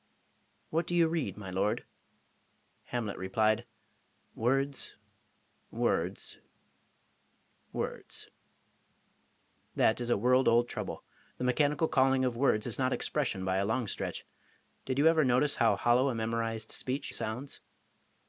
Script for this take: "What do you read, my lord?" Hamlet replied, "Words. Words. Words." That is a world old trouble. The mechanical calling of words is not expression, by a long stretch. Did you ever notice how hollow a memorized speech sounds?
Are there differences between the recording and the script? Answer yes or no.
no